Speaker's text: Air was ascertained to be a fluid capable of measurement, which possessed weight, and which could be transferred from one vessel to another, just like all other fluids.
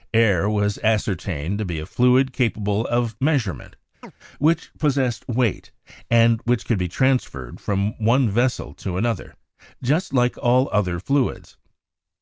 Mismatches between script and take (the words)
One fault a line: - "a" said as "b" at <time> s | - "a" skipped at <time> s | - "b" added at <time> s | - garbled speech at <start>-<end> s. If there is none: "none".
none